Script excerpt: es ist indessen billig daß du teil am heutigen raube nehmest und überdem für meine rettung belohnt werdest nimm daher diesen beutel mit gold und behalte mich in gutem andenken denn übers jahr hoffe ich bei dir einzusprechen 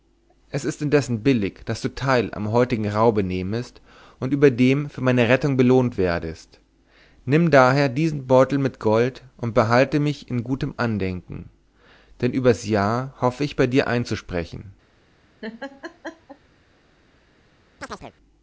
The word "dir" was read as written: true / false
true